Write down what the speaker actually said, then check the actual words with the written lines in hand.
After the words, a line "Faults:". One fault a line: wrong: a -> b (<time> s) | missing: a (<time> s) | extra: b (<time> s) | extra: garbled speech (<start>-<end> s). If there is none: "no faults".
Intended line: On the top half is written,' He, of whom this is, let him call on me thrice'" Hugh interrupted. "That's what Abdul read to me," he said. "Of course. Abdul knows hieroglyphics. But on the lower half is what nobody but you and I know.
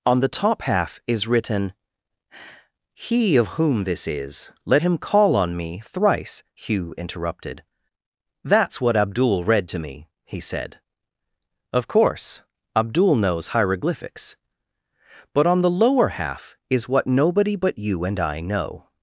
On the top half is written,' He, of whom this is, let him call on me thrice'" Hugh interrupted. "That's what Abdul read to me," he said. "Of course. Abdul knows hieroglyphics. But on the lower half is what nobody but you and I know.
Faults:
no faults